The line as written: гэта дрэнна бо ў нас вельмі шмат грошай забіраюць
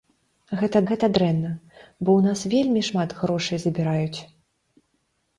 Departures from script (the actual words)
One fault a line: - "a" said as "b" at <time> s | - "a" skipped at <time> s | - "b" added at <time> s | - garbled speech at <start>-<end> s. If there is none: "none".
- "гэта" added at 0.9 s